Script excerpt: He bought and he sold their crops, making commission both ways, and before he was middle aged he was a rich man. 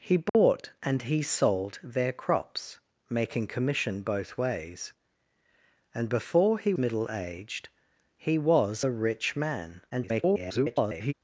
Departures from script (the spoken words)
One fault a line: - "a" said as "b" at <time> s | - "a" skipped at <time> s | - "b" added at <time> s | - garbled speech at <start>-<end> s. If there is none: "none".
- "was" skipped at 6.7 s
- garbled speech at 9.9-11.1 s